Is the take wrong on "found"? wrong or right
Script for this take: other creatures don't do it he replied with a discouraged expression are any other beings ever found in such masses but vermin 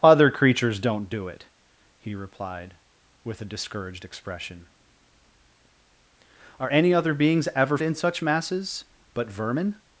wrong